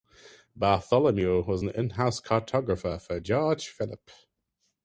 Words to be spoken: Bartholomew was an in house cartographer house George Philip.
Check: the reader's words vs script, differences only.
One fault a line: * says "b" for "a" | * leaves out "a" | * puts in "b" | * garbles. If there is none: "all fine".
* says "for" for "house"